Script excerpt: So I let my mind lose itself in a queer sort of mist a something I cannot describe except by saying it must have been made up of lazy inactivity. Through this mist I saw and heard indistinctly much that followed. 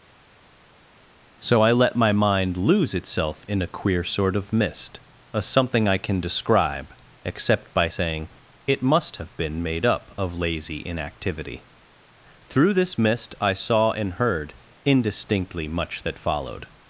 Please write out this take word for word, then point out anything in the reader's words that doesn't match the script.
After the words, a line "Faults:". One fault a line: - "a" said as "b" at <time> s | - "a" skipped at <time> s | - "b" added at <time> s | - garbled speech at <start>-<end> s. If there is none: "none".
So I let my mind lose itself in a queer sort of mist a something I can describe except by saying it must have been made up of lazy inactivity. Through this mist I saw and heard indistinctly much that followed.
Faults:
- "cannot" said as "can" at 6.0 s